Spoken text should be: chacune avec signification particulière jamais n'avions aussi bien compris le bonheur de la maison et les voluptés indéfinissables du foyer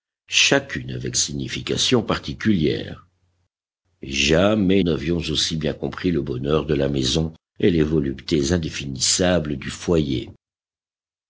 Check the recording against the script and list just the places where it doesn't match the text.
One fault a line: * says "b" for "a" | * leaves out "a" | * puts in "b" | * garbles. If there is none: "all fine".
all fine